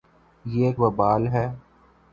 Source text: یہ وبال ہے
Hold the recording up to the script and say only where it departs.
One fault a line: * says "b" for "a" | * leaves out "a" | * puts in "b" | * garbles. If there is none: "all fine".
all fine